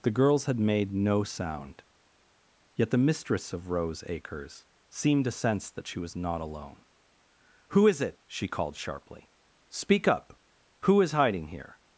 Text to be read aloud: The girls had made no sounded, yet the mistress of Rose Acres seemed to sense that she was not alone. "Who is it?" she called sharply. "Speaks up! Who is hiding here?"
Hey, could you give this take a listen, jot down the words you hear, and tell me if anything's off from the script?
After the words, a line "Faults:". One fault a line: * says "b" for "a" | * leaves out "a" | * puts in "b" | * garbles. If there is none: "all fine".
The girls had made no sound, yet the mistress of Rose Acres seemed to sense that she was not alone. "Who is it?" she called sharply. "Speak up! Who is hiding here?"
Faults:
* says "sound" for "sounded"
* says "Speak" for "Speaks"